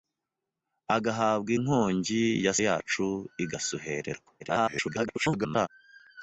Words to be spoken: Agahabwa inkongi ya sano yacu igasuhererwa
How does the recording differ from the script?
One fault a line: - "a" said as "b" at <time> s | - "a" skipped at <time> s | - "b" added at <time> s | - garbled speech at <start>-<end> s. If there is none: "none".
- "sano" skipped at 2.5 s
- garbled speech at 4.4-5.7 s